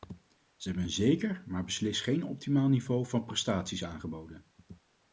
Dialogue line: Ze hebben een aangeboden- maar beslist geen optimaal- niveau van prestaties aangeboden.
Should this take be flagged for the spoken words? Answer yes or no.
yes